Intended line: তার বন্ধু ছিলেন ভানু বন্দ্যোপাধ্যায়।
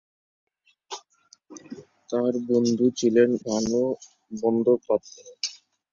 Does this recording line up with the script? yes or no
yes